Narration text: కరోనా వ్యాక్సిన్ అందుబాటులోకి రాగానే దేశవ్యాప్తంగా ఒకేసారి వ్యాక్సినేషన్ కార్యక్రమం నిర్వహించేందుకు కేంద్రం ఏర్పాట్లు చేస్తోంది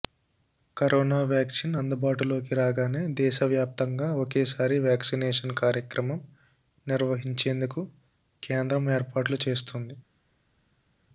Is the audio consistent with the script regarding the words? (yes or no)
yes